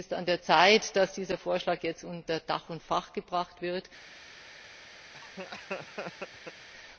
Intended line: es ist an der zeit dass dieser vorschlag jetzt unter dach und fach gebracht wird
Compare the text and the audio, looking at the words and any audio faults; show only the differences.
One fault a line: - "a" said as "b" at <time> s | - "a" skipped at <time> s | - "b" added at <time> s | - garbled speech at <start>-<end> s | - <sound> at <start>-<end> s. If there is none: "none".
- laugh at 5.1-6.7 s